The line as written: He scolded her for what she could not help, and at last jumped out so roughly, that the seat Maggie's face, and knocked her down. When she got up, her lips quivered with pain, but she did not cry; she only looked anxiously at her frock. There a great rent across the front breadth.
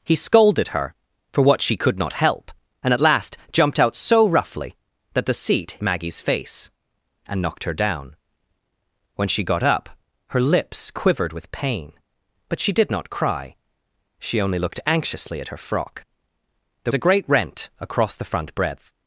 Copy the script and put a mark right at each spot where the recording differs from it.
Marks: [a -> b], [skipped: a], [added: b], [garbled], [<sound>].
He scolded her for what she could not help, and at last jumped out so roughly, that the seat Maggie's face, and knocked her down. When she got up, her lips quivered with pain, but she did not cry; she only looked anxiously at her frock. There a great rent across the front breadth.